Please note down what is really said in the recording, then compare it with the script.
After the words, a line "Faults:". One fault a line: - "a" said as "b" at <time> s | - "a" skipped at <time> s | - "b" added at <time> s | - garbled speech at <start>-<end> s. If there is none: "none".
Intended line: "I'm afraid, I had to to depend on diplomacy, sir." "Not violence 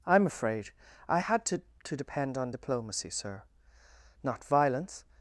"I'm afraid, I had to to depend on diplomacy, sir." "Not violence
Faults:
none